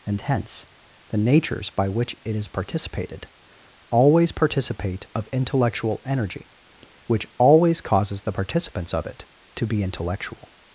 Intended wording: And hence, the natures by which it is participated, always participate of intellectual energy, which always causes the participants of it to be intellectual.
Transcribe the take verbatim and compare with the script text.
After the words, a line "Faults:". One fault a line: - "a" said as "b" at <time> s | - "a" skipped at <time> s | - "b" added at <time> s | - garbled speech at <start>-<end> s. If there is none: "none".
And hence, the natures by which it is participated, always participate of intellectual energy, which always causes the participants of it to be intellectual.
Faults:
none